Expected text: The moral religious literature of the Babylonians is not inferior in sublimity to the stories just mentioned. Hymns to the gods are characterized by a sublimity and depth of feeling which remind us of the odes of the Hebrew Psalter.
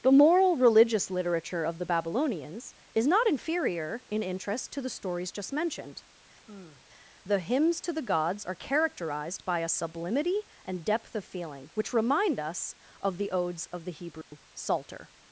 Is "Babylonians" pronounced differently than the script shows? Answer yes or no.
no